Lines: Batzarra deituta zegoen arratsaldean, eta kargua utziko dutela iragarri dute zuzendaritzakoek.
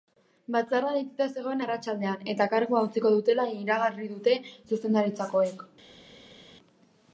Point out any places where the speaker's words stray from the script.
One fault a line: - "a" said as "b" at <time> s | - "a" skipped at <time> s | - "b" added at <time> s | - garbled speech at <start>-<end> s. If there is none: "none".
none